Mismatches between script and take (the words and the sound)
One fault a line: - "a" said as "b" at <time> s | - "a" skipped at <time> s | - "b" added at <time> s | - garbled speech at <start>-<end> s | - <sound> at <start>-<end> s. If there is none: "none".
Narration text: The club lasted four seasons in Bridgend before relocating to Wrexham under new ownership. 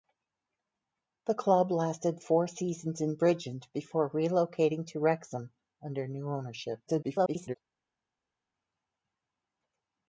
- garbled speech at 6.9-7.6 s